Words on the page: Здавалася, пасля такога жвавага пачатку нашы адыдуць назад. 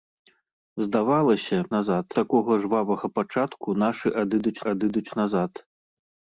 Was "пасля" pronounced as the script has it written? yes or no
no